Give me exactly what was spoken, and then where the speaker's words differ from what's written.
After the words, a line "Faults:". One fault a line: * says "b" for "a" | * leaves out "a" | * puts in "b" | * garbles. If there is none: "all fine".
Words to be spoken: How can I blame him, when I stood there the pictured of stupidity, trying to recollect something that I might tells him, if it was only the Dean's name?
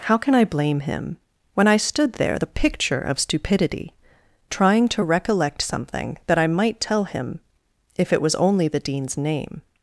How can I blame him, when I stood there the picture of stupidity, trying to recollect something that I might tell him, if it was only the Dean's name?
Faults:
* says "picture" for "pictured"
* says "tell" for "tells"